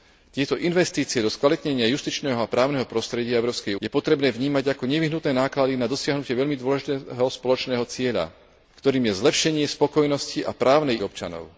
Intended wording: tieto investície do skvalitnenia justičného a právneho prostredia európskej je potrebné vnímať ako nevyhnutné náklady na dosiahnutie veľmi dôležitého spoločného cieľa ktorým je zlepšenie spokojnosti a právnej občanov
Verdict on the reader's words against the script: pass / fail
pass